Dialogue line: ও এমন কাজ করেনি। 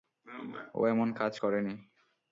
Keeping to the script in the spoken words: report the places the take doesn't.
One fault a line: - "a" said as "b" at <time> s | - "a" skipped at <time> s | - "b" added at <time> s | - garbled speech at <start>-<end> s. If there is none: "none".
none